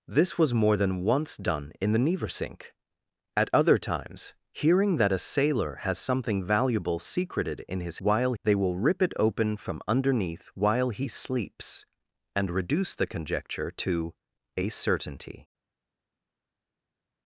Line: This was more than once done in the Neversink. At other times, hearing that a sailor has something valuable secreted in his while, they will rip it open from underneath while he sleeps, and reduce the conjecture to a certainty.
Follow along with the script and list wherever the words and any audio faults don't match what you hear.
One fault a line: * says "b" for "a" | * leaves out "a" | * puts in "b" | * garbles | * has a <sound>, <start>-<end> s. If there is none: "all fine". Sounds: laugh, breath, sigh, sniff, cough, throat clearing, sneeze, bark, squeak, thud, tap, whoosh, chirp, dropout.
all fine